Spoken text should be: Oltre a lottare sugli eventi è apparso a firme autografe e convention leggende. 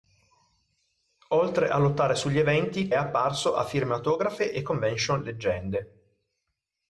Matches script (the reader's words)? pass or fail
pass